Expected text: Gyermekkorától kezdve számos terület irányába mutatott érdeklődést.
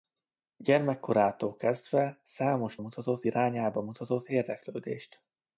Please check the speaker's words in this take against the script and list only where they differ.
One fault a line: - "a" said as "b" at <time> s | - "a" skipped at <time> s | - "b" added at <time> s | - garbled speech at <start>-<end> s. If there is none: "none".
- "terület" said as "mutatott" at 2.8 s